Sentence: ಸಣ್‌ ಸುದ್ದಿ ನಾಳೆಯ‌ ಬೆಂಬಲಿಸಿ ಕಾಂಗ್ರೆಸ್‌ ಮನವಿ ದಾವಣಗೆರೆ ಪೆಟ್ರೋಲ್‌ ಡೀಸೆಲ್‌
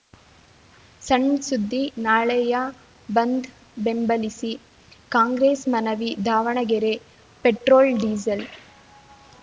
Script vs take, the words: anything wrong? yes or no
yes